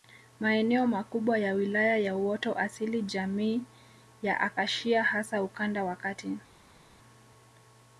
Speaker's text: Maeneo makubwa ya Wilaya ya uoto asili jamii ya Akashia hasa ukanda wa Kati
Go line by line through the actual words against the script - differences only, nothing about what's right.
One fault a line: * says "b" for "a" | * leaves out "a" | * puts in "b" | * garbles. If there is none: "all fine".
all fine